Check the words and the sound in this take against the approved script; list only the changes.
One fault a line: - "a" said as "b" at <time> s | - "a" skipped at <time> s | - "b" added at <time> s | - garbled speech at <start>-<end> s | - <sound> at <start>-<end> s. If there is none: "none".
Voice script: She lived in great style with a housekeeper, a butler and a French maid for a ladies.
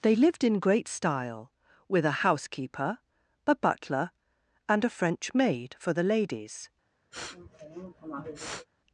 - "She" said as "They" at 0.0 s
- "a" said as "the" at 5.9 s
- sniff at 7.1-8.7 s